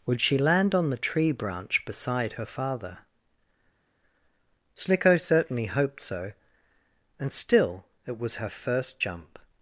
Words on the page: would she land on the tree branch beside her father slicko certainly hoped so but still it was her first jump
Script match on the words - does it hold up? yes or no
no